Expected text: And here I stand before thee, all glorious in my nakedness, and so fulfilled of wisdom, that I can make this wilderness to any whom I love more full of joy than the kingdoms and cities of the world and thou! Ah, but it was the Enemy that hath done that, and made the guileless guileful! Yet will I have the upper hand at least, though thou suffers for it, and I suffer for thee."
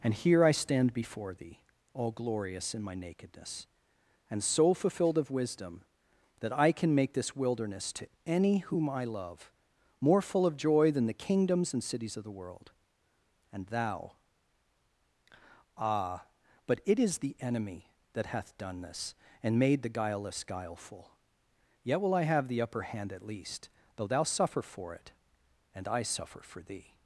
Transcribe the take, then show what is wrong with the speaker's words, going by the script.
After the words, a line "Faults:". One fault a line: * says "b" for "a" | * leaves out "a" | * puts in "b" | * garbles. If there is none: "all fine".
And here I stand before thee, all glorious in my nakedness, and so fulfilled of wisdom, that I can make this wilderness to any whom I love more full of joy than the kingdoms and cities of the world and thou! Ah, but it is the Enemy that hath done this, and made the guileless guileful! Yet will I have the upper hand at least, though thou suffer for it, and I suffer for thee."
Faults:
* says "is" for "was"
* says "this" for "that"
* says "suffer" for "suffers"